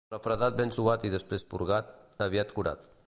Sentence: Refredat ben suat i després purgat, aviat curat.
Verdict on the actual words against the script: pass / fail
pass